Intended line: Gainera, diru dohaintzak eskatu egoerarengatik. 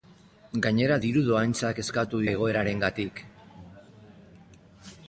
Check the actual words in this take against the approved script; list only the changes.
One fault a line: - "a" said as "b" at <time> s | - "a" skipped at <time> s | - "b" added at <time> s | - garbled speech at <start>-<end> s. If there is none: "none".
none